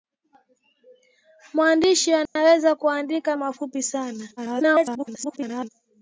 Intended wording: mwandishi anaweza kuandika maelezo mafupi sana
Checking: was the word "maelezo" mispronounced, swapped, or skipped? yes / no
yes